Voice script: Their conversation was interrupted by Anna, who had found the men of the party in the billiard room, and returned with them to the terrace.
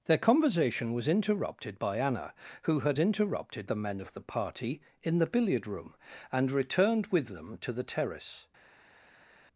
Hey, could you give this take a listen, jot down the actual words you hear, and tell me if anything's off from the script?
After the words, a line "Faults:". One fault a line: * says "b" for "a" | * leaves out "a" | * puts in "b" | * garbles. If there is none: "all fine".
Their conversation was interrupted by Anna, who had interrupted the men of the party in the billiard room, and returned with them to the terrace.
Faults:
* says "interrupted" for "found"